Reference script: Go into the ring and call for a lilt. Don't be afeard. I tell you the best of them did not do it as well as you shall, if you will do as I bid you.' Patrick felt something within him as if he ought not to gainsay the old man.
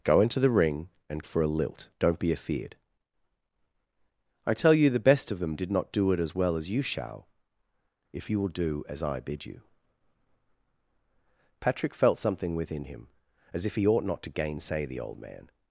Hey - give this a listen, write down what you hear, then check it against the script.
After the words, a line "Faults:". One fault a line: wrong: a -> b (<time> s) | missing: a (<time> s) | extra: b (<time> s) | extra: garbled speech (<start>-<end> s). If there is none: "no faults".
Go into the ring and for a lilt. Don't be afeard. I tell you the best of them did not do it as well as you shall, if you will do as I bid you.' Patrick felt something within him as if he ought not to gainsay the old man.
Faults:
missing: call (1.2 s)